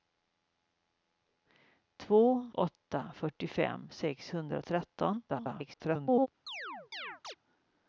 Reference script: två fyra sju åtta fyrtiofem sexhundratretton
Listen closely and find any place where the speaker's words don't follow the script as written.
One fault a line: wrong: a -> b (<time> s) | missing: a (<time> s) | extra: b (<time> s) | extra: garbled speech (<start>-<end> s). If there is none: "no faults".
missing: fyra sju (2.5 s)
extra: garbled speech (5.3-6.3 s)